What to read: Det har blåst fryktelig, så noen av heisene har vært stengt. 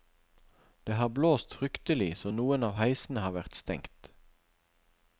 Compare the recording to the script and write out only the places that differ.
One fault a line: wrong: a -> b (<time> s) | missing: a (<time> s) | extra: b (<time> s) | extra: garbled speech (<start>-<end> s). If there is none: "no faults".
no faults